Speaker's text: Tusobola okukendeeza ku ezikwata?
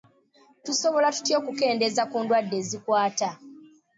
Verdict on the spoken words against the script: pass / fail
fail